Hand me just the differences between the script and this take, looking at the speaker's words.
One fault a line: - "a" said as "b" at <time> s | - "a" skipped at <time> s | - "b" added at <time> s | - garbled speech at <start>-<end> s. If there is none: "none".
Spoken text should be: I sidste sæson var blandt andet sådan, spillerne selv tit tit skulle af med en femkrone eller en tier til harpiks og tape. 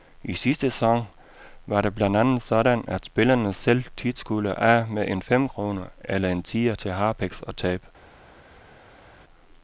- "det" added at 1.8 s
- "at" added at 2.9 s
- "tit" skipped at 4.2 s